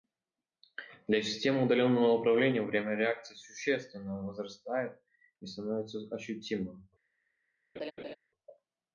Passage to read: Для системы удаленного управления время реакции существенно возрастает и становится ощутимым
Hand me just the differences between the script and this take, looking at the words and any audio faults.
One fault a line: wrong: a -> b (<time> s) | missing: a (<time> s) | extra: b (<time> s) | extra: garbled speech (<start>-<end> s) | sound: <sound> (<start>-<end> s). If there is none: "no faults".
sound: laugh (7.8-8.2 s)